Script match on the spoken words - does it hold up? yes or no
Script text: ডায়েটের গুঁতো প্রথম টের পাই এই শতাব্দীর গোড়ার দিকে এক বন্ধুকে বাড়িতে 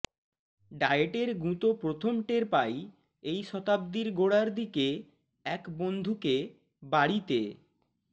yes